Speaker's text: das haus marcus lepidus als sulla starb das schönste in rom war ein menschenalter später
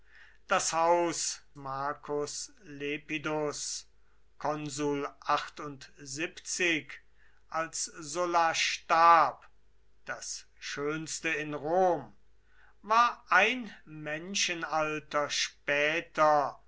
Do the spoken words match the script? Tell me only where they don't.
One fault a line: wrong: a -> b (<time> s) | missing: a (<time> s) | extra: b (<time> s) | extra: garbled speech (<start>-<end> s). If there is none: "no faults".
no faults